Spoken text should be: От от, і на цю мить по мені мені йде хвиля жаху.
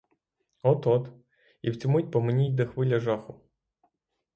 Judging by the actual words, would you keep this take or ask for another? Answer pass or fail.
fail